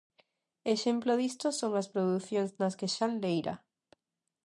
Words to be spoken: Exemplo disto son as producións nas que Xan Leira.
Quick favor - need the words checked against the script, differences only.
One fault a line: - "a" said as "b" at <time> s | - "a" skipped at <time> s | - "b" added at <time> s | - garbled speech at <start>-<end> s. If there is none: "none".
none